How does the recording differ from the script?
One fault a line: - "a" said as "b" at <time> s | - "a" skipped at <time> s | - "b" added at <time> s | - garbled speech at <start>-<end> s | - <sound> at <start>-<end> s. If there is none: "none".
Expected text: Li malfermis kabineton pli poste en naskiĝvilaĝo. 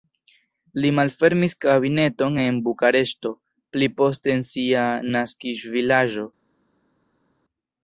- "en Bukareŝto" added at 2.4 s
- "sia" added at 4.5 s